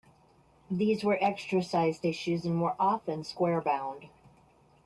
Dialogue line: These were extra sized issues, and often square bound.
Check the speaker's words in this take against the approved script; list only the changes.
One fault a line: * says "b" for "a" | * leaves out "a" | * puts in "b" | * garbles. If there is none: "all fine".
* puts in "were"